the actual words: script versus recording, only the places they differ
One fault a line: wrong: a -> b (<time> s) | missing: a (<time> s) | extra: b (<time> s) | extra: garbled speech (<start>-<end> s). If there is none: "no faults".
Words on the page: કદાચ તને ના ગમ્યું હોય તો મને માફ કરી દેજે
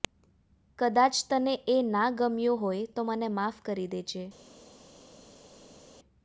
extra: એ (1.7 s)